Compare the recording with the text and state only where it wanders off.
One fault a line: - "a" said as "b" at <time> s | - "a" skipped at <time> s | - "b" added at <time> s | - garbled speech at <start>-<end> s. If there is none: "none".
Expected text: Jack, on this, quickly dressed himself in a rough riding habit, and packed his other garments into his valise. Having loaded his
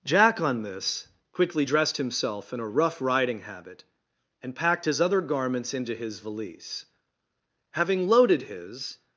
none